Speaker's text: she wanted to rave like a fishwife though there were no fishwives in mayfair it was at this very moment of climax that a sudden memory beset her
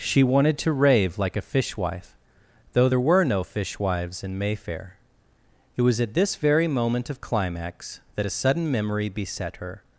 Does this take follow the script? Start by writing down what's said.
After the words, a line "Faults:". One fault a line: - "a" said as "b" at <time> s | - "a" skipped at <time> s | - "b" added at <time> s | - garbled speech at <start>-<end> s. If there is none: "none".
she wanted to rave like a fishwife though there were no fishwives in mayfair it was at this very moment of climax that a sudden memory beset her
Faults:
none